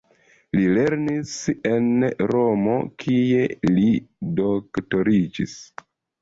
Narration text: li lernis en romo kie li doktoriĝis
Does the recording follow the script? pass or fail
pass